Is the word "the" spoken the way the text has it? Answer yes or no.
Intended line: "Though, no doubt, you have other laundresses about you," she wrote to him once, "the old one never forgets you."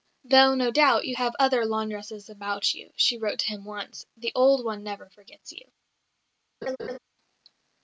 yes